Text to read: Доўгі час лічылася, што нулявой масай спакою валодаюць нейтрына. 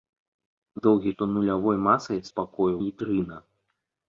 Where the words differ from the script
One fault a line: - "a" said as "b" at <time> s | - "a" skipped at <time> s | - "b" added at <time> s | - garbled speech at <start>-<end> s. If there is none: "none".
- "час лічылася" skipped at 1.1 s
- "валодаюць" skipped at 2.7 s